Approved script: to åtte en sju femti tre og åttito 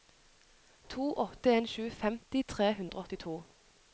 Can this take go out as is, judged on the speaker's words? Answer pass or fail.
fail